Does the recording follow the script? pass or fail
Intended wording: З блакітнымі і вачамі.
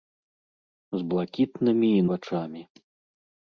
pass